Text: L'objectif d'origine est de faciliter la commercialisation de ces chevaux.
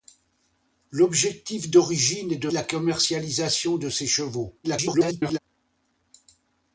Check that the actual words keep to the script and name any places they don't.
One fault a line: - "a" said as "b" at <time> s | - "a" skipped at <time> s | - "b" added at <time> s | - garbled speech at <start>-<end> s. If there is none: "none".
- "faciliter" skipped at 2.5 s
- garbled speech at 4.6-5.4 s